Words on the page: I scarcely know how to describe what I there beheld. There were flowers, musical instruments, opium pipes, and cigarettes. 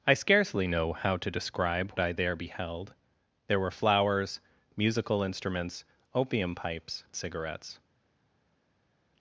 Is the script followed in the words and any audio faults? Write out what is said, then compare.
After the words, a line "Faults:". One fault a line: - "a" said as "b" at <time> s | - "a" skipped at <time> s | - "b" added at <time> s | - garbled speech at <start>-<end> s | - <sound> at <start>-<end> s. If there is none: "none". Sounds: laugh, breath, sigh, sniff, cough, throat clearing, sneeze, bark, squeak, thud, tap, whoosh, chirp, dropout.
I scarcely know how to describe I there beheld. There were flowers, musical instruments, opium pipes, cigarettes.
Faults:
- "what" skipped at 1.9 s
- "and" skipped at 7.0 s